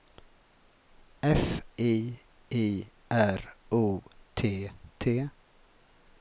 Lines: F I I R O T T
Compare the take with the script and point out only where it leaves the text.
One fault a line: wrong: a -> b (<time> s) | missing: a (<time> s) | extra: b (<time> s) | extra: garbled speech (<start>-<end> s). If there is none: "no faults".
no faults